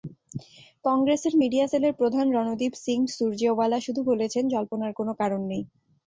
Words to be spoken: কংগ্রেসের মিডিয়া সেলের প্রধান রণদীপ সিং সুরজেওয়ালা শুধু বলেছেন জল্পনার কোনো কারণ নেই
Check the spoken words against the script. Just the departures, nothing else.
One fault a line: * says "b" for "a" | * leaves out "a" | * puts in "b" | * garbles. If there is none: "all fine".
all fine